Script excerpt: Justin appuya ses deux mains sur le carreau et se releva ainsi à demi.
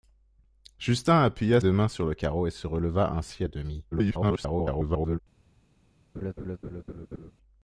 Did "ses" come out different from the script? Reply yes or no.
yes